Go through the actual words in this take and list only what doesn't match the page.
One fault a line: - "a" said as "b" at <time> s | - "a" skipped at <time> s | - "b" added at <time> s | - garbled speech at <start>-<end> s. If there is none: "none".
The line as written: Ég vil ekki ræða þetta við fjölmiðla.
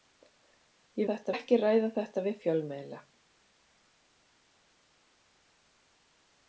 - "vil" said as "þetta" at 1.1 s